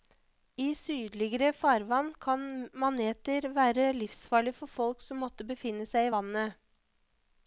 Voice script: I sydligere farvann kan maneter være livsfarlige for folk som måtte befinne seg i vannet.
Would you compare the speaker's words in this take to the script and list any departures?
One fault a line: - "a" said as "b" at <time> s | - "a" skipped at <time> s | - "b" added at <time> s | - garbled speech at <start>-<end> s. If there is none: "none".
none